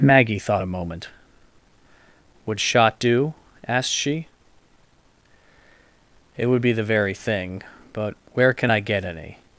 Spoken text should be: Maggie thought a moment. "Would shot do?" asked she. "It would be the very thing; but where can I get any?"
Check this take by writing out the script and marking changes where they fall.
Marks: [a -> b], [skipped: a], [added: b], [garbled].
Maggie thought a moment. "Would shot do?" asked she. "It would be the very thing; but where can I get any?"